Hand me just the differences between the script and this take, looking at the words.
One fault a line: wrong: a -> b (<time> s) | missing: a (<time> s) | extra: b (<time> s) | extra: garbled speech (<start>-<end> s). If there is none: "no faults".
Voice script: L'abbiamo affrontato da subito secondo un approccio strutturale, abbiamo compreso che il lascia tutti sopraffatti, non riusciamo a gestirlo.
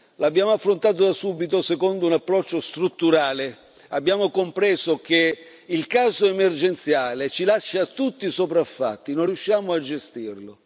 extra: caso emergenziale ci (5.9 s)